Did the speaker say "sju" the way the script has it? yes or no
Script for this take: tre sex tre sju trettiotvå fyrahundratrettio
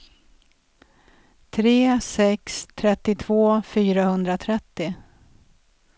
no